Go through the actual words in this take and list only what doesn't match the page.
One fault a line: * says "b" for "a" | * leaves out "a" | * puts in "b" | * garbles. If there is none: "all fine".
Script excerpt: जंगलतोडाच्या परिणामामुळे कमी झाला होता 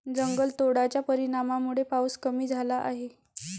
* puts in "पाऊस"
* says "आहे" for "होता"